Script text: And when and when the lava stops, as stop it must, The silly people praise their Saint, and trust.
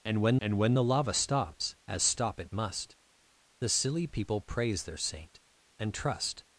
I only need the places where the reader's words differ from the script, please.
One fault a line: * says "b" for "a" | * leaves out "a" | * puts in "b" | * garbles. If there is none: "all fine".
all fine